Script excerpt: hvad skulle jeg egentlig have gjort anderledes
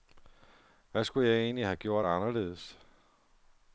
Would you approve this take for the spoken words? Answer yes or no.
yes